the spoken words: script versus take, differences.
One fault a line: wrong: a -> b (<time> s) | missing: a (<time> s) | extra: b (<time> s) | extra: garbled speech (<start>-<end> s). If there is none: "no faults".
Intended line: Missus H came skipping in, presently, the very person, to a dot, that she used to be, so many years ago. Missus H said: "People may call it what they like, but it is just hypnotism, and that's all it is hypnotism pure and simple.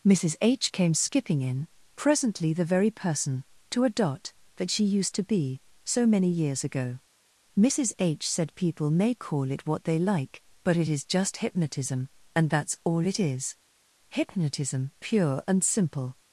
no faults